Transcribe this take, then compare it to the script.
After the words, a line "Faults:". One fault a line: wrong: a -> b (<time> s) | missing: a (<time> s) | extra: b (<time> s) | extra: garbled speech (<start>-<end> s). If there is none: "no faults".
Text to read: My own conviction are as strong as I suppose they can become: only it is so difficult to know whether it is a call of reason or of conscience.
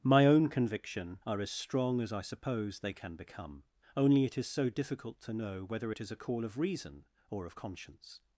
My own conviction are as strong as I suppose they can become: only it is so difficult to know whether it is a call of reason or of conscience.
Faults:
no faults